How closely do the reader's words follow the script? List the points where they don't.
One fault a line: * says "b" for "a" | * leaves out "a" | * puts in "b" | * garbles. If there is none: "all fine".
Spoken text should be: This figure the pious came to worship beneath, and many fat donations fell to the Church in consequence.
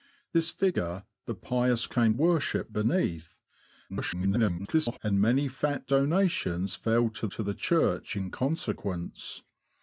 * leaves out "to"
* garbles
* puts in "to"